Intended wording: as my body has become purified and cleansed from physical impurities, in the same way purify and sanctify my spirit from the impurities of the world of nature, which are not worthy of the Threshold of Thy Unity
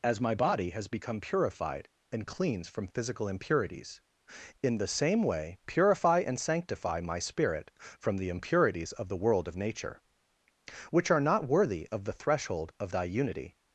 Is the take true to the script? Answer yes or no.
no